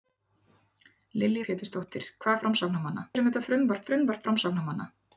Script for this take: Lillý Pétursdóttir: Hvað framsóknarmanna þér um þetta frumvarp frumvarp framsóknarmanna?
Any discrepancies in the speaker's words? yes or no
no